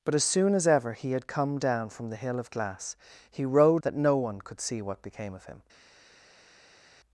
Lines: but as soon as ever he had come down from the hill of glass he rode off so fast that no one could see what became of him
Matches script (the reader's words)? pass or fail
fail